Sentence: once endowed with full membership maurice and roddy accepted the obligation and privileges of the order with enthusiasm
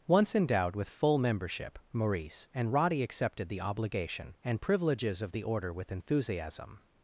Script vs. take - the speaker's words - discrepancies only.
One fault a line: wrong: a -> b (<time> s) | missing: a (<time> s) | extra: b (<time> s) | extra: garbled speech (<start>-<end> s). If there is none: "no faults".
no faults